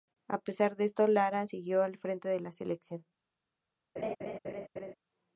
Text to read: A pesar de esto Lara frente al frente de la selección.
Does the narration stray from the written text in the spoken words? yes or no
yes